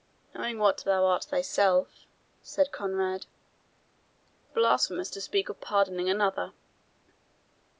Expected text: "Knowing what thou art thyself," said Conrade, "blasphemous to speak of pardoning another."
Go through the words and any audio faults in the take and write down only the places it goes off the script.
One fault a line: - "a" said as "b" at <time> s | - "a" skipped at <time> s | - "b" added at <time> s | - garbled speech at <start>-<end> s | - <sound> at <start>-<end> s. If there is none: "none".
none